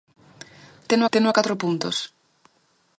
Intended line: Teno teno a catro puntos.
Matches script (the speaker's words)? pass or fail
pass